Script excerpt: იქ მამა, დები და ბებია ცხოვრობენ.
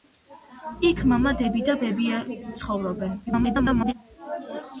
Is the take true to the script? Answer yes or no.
no